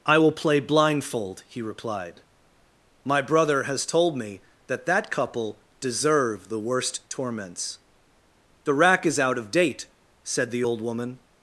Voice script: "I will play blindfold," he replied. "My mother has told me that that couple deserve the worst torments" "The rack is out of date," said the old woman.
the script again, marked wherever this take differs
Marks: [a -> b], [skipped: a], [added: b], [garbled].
"I will play blindfold," he replied. "My [mother -> brother] has told me that that couple deserve the worst torments" "The rack is out of date," said the old woman.